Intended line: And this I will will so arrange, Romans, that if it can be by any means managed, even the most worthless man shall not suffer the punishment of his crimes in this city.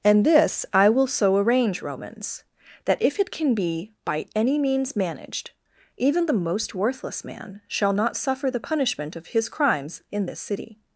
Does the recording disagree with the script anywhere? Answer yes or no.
yes